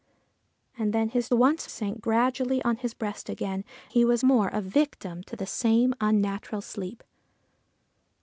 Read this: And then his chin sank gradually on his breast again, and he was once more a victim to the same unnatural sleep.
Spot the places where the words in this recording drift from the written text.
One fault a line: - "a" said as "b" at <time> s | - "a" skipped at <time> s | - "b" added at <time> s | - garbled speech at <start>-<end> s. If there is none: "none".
- "chin" said as "once" at 1.3 s
- "and" skipped at 3.6 s
- "once" skipped at 4.2 s